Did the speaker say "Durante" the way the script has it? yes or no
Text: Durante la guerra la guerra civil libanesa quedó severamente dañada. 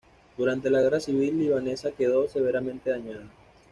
yes